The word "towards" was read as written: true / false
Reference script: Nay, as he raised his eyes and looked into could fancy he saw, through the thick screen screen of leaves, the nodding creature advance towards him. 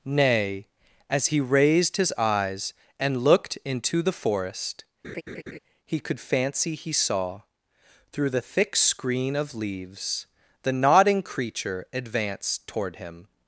false